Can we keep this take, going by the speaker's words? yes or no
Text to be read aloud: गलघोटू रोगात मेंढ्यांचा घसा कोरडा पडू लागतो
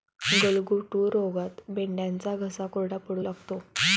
yes